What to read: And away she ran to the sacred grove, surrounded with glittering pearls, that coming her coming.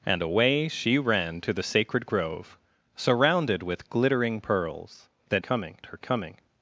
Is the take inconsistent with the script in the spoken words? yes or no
no